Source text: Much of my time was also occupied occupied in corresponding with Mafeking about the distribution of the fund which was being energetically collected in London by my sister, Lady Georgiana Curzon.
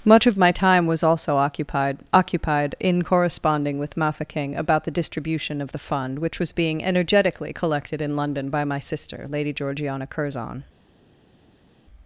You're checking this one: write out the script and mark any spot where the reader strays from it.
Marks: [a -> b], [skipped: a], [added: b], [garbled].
Much of my time was also occupied occupied in corresponding with Mafeking about the distribution of the fund which was being energetically collected in London by my sister, Lady Georgiana Curzon.